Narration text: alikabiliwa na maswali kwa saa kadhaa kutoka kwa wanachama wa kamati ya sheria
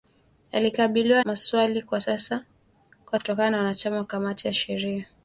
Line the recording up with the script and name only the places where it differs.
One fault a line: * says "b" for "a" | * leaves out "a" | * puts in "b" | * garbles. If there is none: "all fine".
* leaves out "na"
* leaves out "saa kadhaa"